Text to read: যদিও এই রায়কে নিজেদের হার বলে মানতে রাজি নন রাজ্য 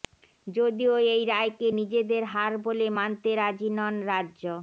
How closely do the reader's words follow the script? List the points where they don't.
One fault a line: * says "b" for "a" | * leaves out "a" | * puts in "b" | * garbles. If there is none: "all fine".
all fine